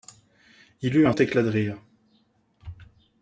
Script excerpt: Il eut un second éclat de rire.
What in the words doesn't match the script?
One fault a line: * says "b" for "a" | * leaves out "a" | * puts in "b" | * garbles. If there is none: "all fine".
* leaves out "second"